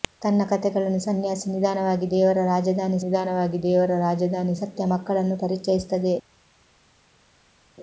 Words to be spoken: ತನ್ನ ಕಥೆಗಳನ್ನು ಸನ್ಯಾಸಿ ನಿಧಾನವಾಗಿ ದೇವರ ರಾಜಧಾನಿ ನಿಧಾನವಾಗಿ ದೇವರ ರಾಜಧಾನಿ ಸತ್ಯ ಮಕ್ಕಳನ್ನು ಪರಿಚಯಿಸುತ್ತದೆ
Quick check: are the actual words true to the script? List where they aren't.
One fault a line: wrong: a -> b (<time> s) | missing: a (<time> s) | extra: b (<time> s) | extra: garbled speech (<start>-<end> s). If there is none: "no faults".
no faults